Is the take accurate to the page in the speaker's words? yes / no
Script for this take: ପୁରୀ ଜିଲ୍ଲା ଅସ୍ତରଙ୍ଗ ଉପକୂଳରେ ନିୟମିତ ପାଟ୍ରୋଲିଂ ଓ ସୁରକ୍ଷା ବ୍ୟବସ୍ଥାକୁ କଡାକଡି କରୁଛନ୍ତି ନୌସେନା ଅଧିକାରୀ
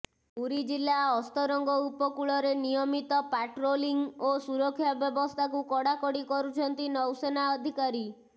yes